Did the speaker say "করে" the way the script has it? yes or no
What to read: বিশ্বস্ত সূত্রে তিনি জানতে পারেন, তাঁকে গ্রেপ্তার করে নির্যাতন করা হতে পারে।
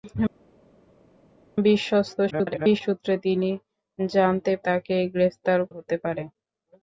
no